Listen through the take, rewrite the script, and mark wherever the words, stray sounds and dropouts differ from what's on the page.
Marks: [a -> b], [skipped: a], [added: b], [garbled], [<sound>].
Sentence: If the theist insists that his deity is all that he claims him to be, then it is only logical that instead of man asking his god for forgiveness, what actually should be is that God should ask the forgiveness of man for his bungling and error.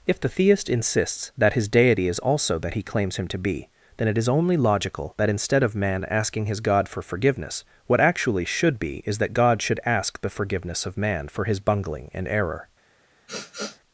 If the theist insists that his deity is [all -> also] that he claims him to be, then it is only logical that instead of man asking his god for forgiveness, what actually should be is that God should ask the forgiveness of man for his bungling and error. [sniff]